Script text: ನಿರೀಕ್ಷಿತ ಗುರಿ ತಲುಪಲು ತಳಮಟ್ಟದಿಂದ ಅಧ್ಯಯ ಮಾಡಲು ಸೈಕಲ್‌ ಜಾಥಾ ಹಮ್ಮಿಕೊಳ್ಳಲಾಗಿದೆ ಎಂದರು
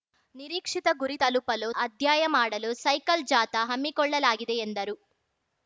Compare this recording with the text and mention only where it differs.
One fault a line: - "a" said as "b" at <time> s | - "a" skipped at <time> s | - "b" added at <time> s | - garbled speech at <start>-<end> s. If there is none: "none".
- "ತಳಮಟ್ಟದಿಂದ" skipped at 1.7 s